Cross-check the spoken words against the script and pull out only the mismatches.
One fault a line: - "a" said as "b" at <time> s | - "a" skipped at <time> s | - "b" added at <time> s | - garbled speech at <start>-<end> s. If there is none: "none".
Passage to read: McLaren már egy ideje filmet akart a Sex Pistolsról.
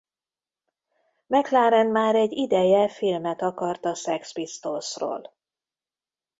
none